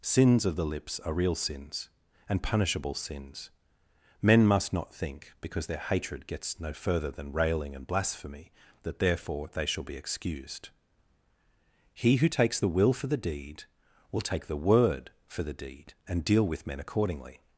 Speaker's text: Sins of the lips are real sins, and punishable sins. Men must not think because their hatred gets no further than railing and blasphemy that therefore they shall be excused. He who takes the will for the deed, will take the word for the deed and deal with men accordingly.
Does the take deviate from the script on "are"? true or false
false